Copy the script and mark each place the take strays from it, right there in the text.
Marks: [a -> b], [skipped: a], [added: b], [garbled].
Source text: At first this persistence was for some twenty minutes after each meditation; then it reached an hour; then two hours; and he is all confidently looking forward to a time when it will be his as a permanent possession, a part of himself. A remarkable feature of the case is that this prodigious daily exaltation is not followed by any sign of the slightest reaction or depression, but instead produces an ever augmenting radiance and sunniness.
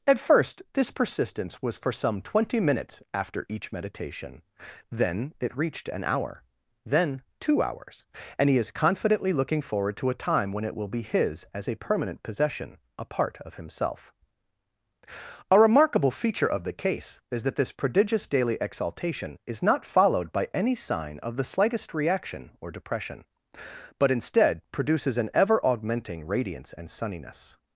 At first this persistence was for some twenty minutes after each meditation; then it reached an hour; then two hours; and he is [skipped: all] confidently looking forward to a time when it will be his as a permanent possession, a part of himself. A remarkable feature of the case is that this prodigious daily exaltation is not followed by any sign of the slightest reaction or depression, but instead produces an ever augmenting radiance and sunniness.